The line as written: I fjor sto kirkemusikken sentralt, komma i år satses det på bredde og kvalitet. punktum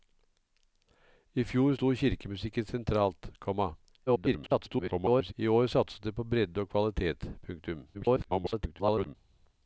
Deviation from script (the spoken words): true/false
true